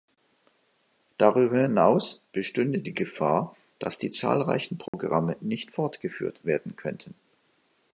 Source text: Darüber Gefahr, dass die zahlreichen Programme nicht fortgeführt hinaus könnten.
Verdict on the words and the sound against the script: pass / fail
fail